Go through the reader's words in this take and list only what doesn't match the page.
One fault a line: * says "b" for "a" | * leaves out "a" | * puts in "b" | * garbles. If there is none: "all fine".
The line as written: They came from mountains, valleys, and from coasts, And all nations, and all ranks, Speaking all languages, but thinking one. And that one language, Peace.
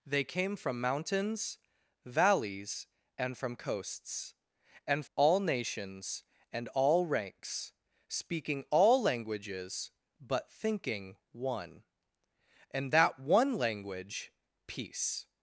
all fine